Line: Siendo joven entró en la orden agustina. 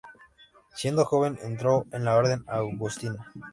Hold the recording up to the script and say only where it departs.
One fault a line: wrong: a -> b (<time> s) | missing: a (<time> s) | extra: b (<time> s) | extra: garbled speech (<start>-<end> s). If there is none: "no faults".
no faults